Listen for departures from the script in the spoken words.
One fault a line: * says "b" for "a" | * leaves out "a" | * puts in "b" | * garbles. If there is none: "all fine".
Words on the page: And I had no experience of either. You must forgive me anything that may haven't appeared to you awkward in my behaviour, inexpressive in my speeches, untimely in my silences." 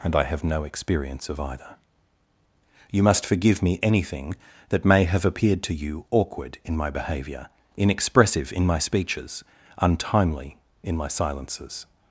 * says "have" for "had"
* says "have" for "haven't"